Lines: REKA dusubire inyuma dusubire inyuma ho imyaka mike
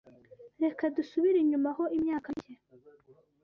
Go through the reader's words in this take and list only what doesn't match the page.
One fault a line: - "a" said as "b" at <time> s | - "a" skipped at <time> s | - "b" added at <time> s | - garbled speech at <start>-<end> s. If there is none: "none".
- "dusubire inyuma" skipped at 1.7 s